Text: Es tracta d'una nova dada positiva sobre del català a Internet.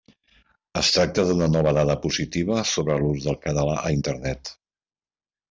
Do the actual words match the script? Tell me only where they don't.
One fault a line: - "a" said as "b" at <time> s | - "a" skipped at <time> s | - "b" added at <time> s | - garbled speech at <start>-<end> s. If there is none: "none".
- "l'ús" added at 3.0 s